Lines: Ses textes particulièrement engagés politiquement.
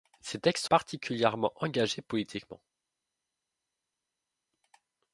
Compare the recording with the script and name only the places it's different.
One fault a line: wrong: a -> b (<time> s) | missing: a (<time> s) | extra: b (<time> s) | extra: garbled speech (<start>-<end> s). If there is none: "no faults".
no faults